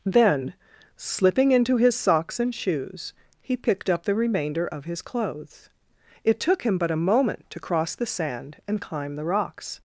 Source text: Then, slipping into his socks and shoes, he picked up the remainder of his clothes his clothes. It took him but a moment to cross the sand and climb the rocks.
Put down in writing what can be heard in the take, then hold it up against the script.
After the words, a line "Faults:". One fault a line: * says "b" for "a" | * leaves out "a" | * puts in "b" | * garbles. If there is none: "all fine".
Then, slipping into his socks and shoes, he picked up the remainder of his clothes. It took him but a moment to cross the sand and climb the rocks.
Faults:
* leaves out "his clothes"